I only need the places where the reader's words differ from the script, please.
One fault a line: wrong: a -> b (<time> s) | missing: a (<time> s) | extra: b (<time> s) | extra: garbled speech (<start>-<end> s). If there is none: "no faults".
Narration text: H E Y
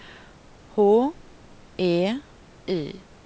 no faults